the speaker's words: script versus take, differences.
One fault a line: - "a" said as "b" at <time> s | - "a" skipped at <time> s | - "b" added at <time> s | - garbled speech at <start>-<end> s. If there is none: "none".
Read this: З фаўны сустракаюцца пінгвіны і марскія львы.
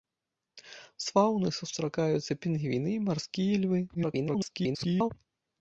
- garbled speech at 3.9-5.1 s